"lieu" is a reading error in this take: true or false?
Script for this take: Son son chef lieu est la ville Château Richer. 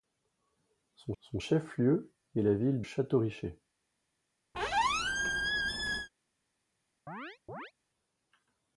false